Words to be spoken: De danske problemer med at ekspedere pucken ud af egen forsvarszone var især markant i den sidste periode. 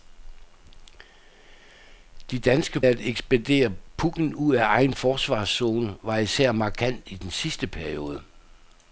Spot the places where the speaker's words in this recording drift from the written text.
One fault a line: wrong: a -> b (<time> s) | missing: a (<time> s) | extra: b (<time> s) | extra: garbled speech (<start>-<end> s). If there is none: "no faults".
missing: problemer med (2.8 s)